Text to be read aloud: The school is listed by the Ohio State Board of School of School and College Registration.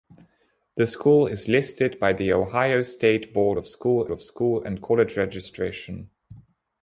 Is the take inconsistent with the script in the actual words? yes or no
no